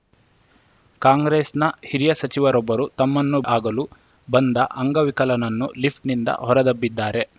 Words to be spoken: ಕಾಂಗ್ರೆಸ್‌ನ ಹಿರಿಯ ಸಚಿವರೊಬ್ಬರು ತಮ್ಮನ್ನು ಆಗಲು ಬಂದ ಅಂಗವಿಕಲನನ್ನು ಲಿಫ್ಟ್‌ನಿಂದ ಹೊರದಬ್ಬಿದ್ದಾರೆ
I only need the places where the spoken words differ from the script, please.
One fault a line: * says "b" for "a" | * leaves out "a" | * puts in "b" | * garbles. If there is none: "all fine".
all fine